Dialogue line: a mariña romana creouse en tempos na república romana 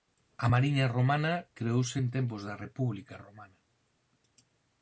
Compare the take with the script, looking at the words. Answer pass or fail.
fail